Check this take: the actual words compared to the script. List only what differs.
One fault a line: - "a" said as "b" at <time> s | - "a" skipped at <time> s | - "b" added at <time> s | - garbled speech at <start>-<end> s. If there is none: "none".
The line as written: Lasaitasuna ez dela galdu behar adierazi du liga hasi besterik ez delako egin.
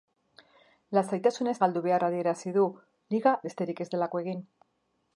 - "dela" skipped at 1.6 s
- "hasi" skipped at 3.4 s